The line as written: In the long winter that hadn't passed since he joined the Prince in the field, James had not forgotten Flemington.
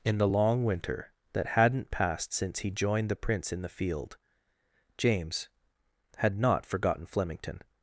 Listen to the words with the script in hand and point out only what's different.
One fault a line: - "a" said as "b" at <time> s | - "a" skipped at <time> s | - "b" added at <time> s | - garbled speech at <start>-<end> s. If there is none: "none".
none